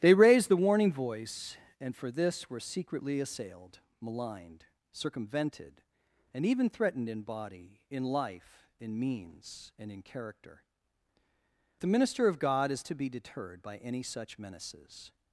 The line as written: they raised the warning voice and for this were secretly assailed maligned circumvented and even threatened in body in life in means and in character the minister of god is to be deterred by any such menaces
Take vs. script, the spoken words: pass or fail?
pass